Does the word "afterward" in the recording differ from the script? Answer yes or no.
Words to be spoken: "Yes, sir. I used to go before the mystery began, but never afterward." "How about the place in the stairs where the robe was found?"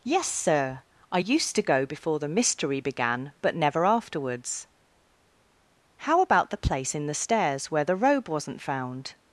yes